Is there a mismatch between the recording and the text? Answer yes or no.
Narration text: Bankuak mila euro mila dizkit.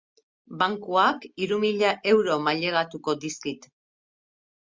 yes